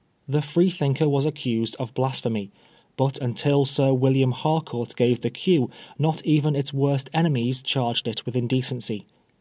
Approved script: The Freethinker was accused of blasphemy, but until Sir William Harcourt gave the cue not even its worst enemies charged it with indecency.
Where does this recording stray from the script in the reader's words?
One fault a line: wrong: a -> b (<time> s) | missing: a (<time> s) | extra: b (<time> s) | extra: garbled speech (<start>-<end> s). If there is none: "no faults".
no faults